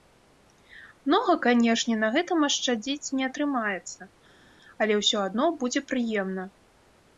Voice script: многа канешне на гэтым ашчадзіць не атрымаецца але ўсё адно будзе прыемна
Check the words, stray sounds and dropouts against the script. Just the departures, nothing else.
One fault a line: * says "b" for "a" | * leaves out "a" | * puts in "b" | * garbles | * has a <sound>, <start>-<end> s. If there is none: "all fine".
all fine